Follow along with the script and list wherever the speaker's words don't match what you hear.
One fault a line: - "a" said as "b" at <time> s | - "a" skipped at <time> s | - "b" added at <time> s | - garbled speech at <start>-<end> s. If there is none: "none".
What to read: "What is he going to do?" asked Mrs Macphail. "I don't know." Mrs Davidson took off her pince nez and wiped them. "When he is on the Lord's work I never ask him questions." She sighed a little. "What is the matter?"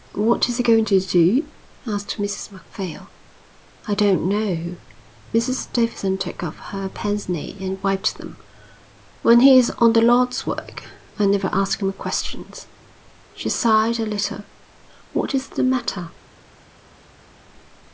none